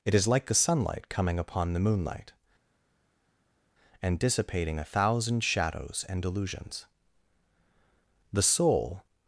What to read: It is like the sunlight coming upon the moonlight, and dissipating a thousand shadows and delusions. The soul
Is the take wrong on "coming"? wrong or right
right